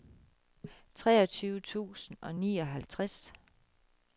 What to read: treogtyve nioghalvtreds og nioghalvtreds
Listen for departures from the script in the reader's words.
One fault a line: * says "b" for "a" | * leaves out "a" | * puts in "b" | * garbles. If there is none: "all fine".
* says "tusind" for "nioghalvtreds"